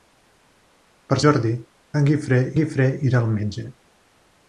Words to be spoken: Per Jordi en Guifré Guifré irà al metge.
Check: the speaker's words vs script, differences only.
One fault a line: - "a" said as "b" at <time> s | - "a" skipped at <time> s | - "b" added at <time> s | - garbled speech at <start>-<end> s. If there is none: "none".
none